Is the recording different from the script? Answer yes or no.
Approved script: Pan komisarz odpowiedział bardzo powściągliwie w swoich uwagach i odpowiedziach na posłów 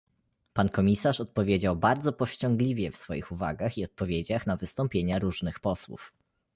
yes